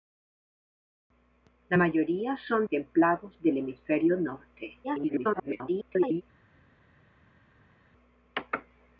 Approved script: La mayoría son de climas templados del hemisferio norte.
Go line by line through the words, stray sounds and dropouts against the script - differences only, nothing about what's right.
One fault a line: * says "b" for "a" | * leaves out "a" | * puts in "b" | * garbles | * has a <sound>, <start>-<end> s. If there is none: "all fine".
* leaves out "de climas"
* garbles